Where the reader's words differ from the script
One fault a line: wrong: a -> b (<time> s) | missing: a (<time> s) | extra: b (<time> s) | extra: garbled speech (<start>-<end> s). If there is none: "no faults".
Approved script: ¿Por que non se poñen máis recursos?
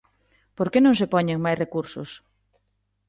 no faults